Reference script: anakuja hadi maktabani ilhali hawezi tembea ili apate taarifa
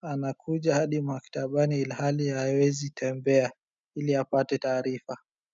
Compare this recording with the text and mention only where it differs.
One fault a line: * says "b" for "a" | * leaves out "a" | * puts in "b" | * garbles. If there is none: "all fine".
all fine